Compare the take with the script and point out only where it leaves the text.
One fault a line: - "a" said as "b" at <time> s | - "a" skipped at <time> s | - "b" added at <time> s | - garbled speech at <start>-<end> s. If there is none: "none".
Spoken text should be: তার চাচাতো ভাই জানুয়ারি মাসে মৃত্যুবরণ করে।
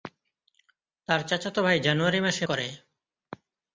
- "মৃত্যুবরণ" skipped at 2.4 s